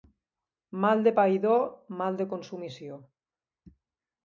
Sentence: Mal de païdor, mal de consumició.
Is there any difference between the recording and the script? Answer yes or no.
no